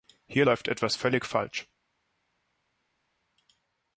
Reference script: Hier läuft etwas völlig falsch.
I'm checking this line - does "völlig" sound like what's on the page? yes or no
yes